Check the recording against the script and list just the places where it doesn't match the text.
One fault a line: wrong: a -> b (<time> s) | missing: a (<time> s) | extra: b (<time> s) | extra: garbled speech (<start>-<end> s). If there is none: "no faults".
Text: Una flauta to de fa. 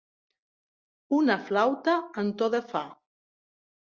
extra: en (2.2 s)